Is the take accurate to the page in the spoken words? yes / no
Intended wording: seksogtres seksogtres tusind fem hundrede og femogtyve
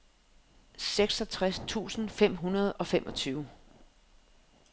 no